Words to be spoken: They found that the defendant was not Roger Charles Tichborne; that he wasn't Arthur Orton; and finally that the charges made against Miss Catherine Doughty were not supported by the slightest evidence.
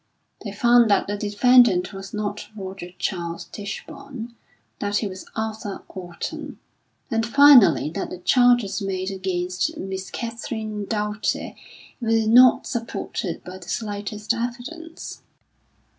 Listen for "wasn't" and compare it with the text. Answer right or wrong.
wrong